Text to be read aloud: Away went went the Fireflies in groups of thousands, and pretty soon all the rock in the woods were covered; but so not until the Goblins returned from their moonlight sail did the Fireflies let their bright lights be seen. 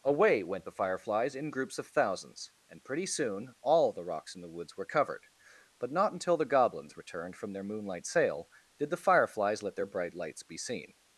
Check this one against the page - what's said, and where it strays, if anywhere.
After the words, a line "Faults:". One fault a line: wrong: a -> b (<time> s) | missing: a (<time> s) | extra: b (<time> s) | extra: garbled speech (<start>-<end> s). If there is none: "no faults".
Away went the Fireflies in groups of thousands, and pretty soon all the rocks in the woods were covered; but not until the Goblins returned from their moonlight sail did the Fireflies let their bright lights be seen.
Faults:
missing: went (0.7 s)
wrong: rock -> rocks (4.0 s)
missing: so (5.9 s)